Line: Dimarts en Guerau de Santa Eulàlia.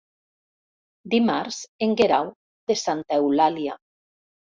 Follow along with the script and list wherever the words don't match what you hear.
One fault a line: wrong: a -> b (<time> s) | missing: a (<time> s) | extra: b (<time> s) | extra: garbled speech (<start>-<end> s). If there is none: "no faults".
no faults